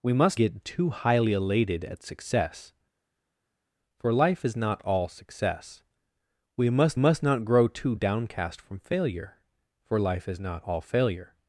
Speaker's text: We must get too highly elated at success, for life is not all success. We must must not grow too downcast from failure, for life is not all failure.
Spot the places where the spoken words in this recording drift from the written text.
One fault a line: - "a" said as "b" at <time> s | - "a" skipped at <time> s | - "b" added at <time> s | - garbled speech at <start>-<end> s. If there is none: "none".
none